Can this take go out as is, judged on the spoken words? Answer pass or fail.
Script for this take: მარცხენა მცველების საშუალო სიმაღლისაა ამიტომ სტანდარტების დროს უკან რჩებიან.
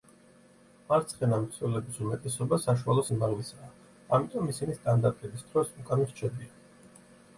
fail